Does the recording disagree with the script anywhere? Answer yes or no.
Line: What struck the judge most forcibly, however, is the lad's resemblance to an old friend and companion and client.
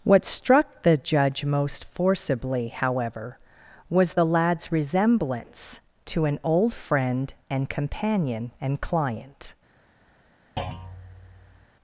yes